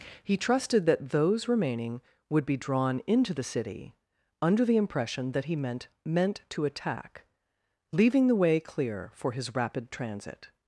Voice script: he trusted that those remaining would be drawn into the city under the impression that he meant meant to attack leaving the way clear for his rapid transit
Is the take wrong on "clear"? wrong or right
right